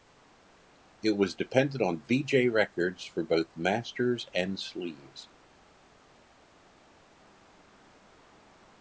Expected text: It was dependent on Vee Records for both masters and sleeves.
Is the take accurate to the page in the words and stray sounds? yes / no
no